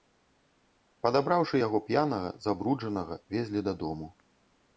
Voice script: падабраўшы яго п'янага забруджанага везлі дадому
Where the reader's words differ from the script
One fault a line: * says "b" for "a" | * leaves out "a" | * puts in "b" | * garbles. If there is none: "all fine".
all fine